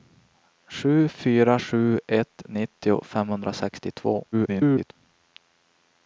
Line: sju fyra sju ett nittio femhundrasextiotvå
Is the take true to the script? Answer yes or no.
no